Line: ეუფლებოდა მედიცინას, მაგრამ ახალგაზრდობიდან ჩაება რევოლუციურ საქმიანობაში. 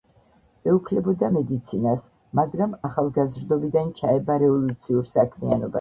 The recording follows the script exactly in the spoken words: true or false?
true